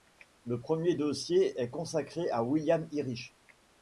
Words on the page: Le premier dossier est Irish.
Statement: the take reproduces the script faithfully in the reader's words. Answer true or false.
false